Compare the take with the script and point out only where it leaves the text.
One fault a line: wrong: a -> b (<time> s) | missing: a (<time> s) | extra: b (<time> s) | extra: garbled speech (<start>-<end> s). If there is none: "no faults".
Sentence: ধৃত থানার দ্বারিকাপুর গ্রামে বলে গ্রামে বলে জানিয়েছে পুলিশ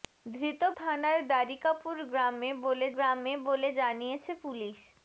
no faults